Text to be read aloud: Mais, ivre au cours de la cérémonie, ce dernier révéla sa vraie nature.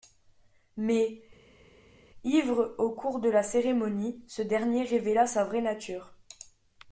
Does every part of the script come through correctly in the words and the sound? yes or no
yes